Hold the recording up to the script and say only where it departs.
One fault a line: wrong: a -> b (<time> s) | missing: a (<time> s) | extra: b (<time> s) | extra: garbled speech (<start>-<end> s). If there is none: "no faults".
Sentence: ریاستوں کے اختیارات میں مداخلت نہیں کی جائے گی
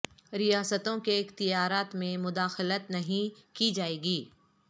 no faults